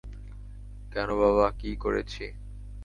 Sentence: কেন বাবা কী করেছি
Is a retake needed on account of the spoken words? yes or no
no